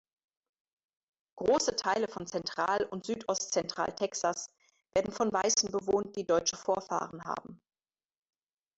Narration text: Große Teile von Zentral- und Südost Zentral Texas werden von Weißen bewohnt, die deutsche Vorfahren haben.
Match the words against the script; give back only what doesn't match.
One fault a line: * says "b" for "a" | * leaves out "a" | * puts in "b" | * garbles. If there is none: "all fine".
all fine